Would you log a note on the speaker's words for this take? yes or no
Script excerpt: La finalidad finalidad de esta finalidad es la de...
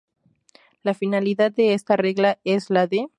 yes